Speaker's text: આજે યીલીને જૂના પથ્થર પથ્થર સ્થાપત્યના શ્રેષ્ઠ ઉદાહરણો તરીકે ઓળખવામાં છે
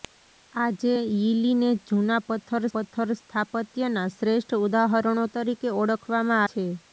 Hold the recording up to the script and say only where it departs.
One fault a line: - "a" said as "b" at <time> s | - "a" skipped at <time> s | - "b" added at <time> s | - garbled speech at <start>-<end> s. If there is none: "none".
none